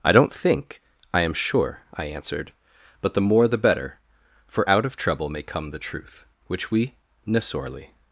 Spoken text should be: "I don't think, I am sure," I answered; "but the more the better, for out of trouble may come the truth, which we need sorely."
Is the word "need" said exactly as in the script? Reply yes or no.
no